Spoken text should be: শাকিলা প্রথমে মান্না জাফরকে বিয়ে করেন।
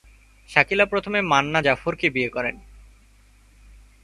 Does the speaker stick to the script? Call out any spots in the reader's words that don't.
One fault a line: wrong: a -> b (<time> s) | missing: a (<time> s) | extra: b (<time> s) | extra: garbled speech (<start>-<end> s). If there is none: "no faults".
no faults